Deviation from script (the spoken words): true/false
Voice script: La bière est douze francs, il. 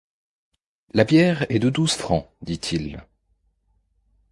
true